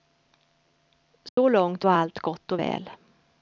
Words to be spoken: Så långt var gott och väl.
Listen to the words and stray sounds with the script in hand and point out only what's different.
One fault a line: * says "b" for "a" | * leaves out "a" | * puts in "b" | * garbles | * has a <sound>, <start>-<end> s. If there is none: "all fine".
* has a dropout, 1.3-1.4 s
* puts in "allt"